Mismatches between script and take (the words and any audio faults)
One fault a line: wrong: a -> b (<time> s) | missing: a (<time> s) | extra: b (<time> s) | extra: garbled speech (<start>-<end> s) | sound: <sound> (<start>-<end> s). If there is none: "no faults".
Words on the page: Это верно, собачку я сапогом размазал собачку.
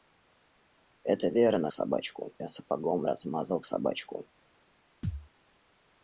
sound: thud (5.0-5.3 s)